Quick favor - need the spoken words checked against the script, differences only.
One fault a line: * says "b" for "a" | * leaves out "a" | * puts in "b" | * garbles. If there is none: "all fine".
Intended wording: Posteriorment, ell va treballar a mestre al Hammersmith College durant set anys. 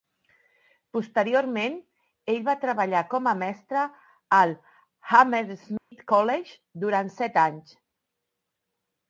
* puts in "com"